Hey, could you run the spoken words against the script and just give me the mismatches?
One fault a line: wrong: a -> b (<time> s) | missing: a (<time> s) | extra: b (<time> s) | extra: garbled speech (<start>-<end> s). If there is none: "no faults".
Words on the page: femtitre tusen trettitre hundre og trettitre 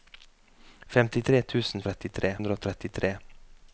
no faults